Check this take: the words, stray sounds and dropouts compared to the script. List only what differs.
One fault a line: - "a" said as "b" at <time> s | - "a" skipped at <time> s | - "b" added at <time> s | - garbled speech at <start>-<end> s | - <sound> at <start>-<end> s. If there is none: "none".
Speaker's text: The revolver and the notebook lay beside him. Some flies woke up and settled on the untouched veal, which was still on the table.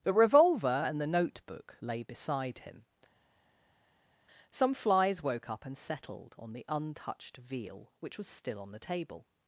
none